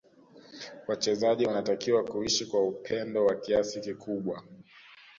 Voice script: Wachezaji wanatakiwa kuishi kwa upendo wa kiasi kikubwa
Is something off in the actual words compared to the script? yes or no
no